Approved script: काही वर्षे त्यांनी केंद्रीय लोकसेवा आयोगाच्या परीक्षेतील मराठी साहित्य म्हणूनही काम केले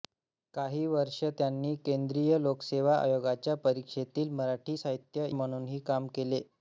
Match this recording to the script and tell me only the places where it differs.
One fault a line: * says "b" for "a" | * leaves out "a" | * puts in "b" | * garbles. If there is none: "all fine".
all fine